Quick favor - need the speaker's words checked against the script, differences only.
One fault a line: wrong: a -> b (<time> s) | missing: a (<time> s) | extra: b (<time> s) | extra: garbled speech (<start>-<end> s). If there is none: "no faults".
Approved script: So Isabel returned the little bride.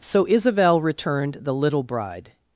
no faults